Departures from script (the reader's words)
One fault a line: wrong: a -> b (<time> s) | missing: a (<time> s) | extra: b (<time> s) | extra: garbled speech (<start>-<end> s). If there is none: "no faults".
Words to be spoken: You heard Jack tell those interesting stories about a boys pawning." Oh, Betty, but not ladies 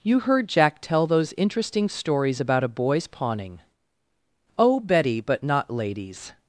no faults